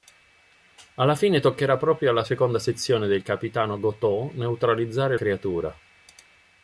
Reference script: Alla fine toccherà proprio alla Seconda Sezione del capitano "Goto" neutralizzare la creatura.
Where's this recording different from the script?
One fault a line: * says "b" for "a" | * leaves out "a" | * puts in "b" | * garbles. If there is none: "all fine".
* leaves out "la"